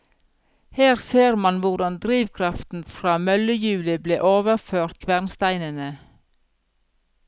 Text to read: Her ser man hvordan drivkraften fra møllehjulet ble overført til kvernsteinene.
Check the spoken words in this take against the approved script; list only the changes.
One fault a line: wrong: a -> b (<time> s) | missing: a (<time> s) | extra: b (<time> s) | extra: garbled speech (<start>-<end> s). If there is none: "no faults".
missing: til (5.0 s)